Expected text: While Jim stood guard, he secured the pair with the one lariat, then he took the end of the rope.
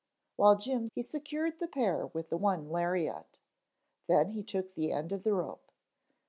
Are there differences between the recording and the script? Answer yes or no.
yes